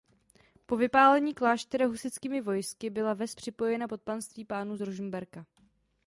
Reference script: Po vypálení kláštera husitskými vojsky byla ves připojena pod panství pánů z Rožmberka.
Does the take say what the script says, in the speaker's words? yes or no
yes